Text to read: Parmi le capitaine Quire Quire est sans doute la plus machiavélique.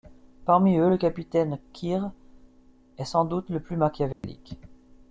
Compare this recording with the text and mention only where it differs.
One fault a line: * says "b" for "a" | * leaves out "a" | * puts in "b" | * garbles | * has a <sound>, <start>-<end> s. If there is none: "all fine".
* puts in "eux"
* leaves out "Quire"
* says "le" for "la"
* has a dropout, 4.1-4.2 s